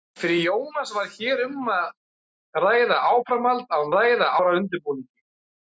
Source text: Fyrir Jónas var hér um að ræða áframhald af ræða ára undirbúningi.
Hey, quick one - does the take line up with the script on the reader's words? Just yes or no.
yes